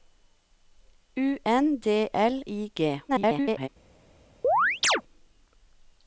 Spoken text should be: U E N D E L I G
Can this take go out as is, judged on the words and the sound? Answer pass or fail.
fail